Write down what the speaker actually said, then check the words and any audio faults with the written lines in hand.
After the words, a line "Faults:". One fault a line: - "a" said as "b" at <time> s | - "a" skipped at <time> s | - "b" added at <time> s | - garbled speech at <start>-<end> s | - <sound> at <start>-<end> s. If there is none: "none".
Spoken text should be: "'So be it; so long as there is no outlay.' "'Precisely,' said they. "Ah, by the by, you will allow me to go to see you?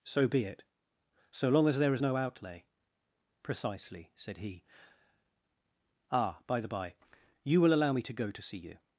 "'So be it; so long as there is no outlay.' "'Precisely,' said he. "Ah, by the by, you will allow me to go to see you?
Faults:
- "they" said as "he" at 4.4 s